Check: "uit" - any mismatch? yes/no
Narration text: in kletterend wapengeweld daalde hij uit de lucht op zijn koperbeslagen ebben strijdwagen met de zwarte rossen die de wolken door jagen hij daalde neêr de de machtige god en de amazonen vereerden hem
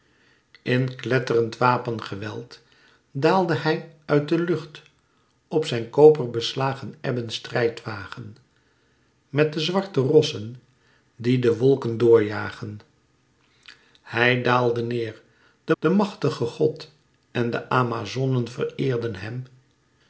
no